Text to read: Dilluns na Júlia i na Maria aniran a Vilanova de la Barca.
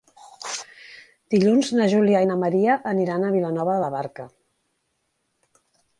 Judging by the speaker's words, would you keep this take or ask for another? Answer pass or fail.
pass